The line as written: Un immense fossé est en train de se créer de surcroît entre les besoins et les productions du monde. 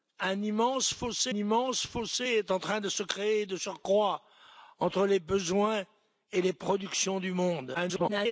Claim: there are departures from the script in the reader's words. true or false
true